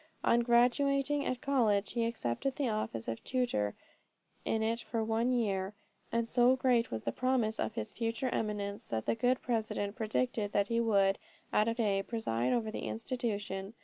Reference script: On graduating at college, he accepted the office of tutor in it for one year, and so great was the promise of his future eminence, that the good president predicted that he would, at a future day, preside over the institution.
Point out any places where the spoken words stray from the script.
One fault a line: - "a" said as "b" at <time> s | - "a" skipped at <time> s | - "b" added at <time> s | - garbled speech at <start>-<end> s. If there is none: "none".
- "future" skipped at 11.8 s